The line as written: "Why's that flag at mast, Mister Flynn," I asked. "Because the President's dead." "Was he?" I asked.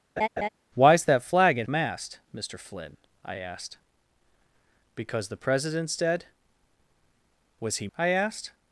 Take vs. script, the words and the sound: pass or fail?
fail